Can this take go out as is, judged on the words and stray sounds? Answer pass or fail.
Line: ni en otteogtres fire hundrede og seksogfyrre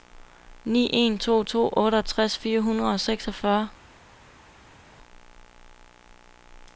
fail